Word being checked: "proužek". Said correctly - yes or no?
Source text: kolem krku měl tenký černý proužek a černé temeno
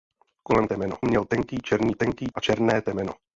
no